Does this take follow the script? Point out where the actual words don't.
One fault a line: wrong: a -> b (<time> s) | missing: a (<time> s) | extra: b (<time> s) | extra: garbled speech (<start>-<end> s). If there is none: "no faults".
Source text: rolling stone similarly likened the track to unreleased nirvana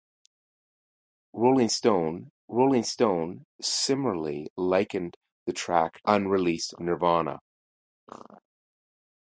extra: rolling stone (2.5 s)
missing: to (6.0 s)